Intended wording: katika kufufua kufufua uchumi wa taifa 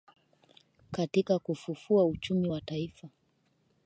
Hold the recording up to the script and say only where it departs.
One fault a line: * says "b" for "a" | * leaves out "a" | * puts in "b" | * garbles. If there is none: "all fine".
* leaves out "kufufua"